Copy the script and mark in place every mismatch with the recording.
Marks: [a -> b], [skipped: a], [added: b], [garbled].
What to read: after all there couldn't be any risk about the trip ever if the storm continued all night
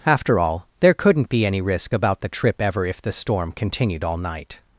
after all there couldn't be any risk about the trip ever if the storm continued all night